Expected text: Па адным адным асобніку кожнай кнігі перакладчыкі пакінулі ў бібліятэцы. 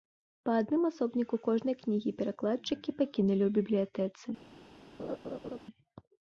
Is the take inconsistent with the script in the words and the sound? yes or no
yes